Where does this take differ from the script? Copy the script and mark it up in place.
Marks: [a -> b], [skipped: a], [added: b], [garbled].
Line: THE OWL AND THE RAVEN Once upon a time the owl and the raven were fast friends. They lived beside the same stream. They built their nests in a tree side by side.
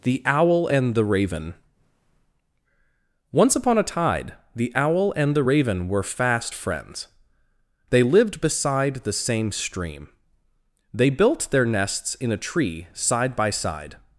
THE OWL AND THE RAVEN Once upon a [time -> tide] the owl and the raven were fast friends. They lived beside the same stream. They built their nests in a tree side by side.